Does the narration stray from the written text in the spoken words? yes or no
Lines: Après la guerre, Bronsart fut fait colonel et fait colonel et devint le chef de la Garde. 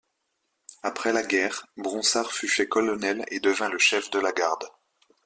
yes